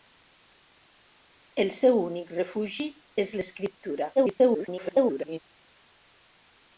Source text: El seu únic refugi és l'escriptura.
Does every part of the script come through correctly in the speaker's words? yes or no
no